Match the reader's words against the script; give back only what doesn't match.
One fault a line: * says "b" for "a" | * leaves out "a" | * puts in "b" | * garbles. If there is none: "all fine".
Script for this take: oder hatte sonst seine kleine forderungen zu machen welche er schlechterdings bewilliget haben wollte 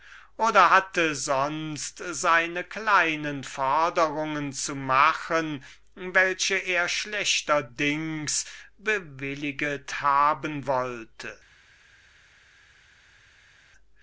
all fine